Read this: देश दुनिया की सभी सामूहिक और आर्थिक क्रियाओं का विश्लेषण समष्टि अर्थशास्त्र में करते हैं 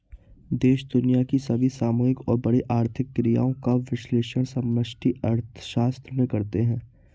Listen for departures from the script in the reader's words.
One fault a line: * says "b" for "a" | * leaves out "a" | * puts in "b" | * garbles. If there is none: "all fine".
* puts in "बड़ी"